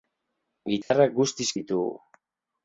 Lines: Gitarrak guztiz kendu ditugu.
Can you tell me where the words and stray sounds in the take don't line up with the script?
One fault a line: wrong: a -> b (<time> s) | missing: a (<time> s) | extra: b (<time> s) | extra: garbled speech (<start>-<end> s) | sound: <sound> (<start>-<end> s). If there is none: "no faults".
sound: dropout (0.8-0.9 s)
missing: kendu (1.5 s)